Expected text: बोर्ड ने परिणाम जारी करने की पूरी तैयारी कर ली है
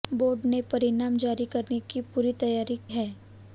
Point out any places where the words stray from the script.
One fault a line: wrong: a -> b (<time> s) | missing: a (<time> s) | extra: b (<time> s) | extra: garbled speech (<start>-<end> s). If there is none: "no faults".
missing: कर ली (2.8 s)